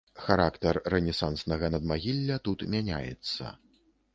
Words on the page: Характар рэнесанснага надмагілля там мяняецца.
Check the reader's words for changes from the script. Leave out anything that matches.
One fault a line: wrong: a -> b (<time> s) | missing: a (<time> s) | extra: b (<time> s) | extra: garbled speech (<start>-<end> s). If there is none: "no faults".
wrong: там -> тут (2.5 s)